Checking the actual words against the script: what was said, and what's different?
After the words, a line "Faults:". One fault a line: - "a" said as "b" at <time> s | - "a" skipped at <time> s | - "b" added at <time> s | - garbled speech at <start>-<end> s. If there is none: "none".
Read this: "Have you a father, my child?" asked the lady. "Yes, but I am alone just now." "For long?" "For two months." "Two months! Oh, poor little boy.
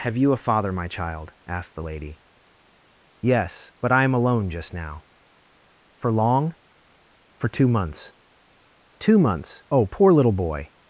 "Have you a father, my child?" asked the lady. "Yes, but I am alone just now." "For long?" "For two months." "Two months! Oh, poor little boy.
Faults:
none